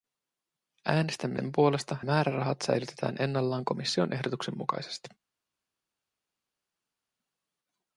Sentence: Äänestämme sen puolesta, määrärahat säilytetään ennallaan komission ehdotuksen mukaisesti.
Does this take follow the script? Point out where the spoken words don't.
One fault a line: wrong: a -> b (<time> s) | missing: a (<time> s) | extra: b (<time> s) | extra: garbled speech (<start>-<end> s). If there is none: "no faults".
no faults